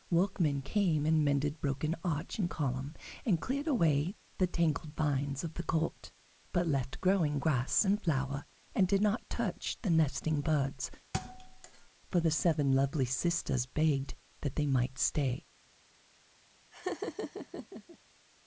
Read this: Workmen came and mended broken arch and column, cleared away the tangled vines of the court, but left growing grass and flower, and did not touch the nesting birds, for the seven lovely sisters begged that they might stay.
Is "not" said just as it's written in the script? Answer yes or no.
yes